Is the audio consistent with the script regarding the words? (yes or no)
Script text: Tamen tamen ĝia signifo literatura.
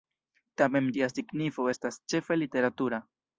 no